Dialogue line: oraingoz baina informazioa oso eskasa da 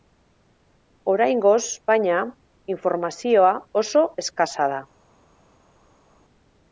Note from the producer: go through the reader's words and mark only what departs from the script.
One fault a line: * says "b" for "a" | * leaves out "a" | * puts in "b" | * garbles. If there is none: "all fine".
all fine